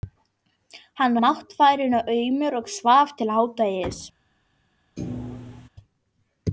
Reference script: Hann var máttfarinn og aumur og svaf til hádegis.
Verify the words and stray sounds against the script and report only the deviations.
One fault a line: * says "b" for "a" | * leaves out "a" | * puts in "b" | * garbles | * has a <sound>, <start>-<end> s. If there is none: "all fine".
* leaves out "var"
* has a thud, 5.0-5.7 s